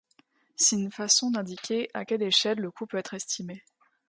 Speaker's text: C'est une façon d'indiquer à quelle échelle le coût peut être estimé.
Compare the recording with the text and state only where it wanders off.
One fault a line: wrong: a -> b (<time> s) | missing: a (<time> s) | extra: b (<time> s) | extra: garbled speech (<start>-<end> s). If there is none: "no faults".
no faults